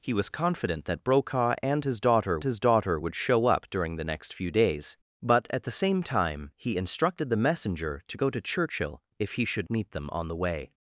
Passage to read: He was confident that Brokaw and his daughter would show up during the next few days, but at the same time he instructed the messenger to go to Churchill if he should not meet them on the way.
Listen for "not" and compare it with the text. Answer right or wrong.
wrong